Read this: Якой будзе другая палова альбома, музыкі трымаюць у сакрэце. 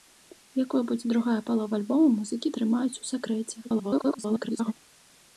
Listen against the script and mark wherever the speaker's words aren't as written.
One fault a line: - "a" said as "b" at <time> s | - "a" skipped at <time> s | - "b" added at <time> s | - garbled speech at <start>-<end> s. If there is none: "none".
- garbled speech at 3.6-4.7 s